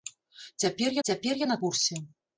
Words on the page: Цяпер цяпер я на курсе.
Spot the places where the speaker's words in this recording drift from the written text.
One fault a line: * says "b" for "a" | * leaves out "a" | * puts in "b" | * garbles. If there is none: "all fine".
all fine